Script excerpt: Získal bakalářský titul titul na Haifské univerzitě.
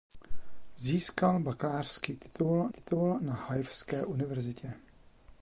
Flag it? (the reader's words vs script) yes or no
no